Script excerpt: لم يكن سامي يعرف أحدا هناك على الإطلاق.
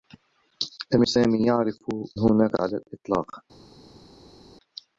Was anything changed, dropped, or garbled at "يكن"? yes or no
yes